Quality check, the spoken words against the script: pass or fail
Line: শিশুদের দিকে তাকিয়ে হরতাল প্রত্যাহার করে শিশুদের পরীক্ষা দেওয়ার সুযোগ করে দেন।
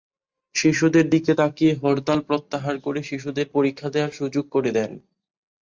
pass